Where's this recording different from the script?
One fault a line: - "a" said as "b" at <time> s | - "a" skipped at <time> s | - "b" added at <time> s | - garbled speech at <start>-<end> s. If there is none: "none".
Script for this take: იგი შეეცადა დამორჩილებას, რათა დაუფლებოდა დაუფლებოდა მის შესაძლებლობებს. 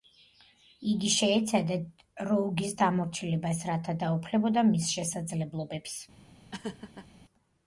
- "როუგის" added at 2.3 s
- "დაუფლებოდა" skipped at 4.7 s